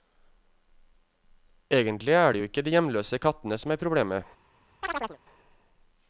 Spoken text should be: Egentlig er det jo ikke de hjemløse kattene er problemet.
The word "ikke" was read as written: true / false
true